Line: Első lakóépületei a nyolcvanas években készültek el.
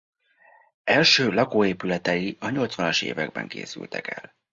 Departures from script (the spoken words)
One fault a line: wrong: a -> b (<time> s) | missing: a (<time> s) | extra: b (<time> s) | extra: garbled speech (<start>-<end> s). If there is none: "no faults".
no faults